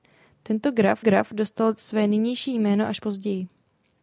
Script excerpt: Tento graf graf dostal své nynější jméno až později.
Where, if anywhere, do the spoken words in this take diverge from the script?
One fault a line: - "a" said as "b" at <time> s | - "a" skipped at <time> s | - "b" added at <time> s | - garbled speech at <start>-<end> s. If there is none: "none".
none